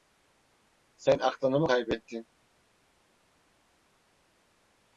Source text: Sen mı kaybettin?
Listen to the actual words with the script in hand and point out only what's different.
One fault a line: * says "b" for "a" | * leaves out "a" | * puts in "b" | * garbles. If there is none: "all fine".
* puts in "aklını"